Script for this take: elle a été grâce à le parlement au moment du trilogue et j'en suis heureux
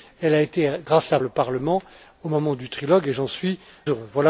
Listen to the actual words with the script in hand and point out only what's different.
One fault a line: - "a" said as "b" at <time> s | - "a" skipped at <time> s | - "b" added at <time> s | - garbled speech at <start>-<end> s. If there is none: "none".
none